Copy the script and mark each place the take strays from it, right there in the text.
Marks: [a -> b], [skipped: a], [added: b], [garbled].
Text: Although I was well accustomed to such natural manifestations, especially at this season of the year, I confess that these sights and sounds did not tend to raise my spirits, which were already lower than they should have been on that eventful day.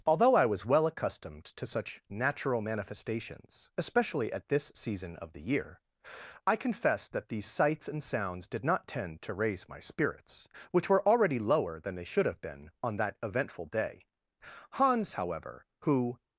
Although I was well accustomed to such natural manifestations, especially at this season of the year, I confess that these sights and sounds did not tend to raise my spirits, which were already lower than they should have been on that eventful day. [added: Hans however who]